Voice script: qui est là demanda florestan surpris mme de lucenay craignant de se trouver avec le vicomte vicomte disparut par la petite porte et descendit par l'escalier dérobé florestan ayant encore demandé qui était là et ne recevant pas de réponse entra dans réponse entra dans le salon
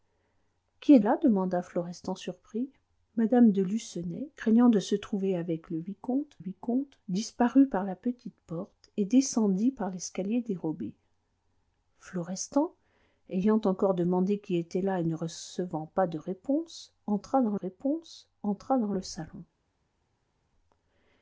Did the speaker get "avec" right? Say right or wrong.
right